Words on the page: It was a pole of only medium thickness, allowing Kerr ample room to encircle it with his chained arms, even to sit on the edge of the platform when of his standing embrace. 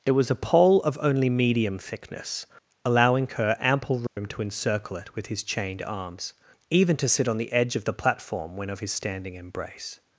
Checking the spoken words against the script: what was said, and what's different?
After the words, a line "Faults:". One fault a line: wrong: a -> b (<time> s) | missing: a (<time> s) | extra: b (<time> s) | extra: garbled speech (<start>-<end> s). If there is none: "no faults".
It was a pole of only medium thickness, allowing Kerr ample room to encircle it with his chained arms, even to sit on the edge of the platform when of his standing embrace.
Faults:
no faults